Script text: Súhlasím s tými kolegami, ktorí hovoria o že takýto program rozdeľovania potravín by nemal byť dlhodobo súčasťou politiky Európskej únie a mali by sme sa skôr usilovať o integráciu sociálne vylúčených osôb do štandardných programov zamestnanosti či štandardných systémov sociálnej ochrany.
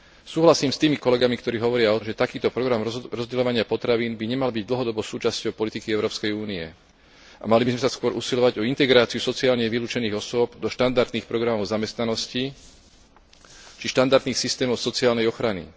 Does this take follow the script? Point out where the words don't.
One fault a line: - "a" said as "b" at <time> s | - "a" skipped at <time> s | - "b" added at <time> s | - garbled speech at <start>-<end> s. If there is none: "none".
none